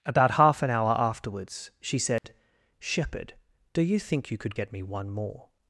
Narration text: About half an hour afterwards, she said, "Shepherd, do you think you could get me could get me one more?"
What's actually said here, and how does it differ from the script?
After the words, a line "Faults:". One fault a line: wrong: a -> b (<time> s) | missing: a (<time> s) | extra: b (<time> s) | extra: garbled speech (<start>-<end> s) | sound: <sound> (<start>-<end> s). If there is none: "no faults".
About half an hour afterwards, she said, "Shepherd, do you think you could get me one more?"
Faults:
sound: dropout (2.2-2.2 s)
missing: could get me (4.8 s)